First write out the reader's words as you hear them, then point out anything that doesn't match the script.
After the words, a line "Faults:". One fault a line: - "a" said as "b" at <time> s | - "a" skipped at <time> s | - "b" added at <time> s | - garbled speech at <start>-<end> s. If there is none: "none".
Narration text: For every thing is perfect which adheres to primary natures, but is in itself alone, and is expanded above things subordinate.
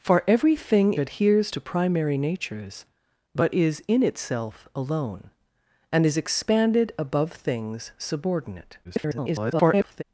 For every thing adheres to primary natures, but is in itself alone, and is expanded above things subordinate. [garbled]
Faults:
- "is perfect which" skipped at 0.9 s
- garbled speech at 8.8-10.0 s